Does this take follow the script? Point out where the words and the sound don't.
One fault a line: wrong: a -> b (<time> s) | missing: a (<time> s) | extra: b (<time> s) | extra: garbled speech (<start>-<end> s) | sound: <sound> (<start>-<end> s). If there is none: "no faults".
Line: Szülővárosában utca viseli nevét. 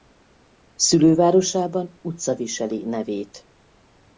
no faults